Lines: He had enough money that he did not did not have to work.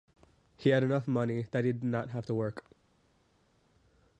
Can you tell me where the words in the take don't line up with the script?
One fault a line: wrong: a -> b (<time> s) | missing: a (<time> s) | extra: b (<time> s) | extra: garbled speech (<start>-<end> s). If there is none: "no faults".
missing: did not (2.1 s)